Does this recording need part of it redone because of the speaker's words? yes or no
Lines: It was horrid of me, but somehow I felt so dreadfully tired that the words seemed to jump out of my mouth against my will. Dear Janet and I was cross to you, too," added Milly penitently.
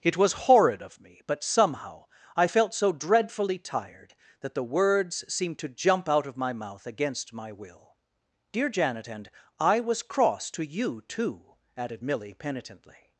no